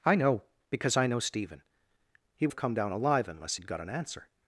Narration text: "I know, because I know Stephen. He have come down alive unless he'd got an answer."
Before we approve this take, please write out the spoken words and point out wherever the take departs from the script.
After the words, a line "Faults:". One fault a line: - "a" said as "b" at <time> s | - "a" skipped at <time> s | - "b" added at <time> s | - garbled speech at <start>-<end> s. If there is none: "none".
"I know, because I know Stephen. He have come down alive unless he'd got an answer."
Faults:
none